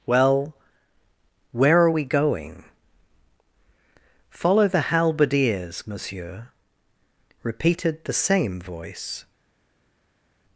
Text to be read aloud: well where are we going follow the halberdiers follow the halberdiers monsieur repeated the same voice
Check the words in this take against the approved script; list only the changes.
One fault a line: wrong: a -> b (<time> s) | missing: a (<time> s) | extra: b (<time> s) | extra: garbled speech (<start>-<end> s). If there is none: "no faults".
missing: follow the halberdiers (5.9 s)